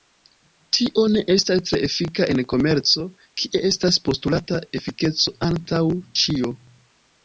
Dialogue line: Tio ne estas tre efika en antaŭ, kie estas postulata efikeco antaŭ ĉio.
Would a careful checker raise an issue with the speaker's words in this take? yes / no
yes